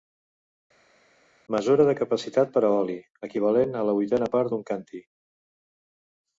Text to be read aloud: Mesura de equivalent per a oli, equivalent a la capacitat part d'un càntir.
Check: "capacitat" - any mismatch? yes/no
yes